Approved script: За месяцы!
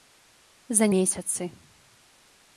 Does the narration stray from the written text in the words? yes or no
no